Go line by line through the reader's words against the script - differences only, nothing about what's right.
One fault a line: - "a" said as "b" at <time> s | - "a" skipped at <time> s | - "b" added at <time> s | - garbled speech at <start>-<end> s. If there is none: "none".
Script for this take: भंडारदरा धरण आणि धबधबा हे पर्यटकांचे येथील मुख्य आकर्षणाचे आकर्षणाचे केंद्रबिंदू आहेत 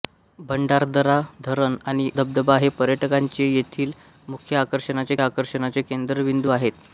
none